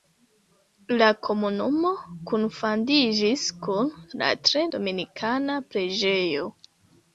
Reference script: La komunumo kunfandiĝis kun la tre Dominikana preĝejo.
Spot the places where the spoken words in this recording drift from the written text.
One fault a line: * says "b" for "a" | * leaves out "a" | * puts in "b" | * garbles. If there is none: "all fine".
all fine